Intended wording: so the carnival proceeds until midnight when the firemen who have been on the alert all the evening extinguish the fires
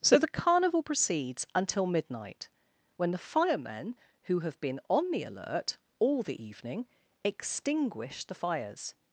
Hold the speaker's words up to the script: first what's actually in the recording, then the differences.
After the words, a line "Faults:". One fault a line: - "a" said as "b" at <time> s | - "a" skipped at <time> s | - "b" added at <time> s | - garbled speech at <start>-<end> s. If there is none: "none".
so the carnival proceeds until midnight when the firemen who have been on the alert all the evening extinguish the fires
Faults:
none